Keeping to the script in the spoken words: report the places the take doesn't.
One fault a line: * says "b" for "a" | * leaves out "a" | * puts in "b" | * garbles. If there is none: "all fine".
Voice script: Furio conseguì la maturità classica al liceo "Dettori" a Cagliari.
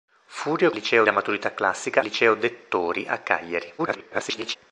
* says "liceo" for "conseguì"
* leaves out "al"
* garbles